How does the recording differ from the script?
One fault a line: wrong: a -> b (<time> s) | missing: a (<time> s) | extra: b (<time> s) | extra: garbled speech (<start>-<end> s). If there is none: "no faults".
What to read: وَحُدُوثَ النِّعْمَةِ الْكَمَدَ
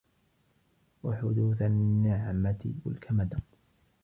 no faults